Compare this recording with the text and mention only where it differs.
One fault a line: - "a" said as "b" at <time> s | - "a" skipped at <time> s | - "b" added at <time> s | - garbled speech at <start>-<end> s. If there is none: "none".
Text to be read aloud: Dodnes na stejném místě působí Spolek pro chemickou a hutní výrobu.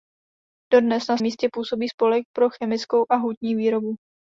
- "stejném" skipped at 1.2 s